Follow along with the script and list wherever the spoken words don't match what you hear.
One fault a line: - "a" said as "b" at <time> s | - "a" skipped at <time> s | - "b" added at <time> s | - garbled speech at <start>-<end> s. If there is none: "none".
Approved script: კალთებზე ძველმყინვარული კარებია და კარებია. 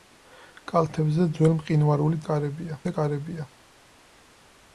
none